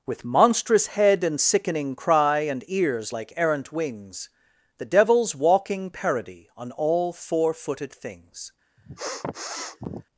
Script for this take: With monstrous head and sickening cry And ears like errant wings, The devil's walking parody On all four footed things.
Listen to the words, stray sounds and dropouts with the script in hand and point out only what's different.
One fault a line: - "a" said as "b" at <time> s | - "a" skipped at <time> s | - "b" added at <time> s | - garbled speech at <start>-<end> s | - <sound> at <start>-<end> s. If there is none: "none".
- sniff at 8.8-10.1 s